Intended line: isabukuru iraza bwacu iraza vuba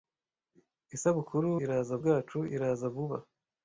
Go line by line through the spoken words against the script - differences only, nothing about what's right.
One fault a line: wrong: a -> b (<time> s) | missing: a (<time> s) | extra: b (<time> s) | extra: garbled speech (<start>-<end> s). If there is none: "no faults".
no faults